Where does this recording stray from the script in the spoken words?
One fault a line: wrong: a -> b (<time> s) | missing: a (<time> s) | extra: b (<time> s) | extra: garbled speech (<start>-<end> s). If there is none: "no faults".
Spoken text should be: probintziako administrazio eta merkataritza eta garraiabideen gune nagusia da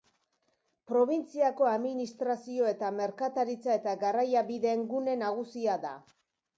no faults